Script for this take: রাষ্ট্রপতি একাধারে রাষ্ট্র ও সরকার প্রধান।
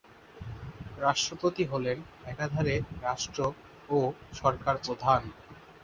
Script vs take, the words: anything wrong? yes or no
yes